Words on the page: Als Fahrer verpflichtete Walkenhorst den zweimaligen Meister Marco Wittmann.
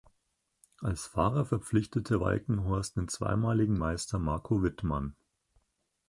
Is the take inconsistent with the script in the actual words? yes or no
no